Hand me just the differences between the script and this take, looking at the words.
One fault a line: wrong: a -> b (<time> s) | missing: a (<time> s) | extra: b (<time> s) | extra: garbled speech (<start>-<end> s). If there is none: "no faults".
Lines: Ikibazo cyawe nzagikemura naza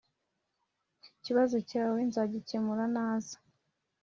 no faults